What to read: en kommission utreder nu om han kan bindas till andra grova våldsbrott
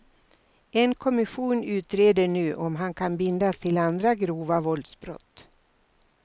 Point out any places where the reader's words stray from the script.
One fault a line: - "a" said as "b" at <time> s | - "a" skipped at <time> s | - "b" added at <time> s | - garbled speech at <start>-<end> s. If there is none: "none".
none